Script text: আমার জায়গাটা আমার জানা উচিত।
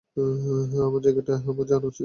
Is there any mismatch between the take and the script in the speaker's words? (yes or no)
no